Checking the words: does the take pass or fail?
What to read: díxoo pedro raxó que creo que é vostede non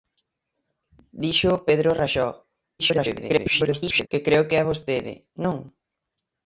fail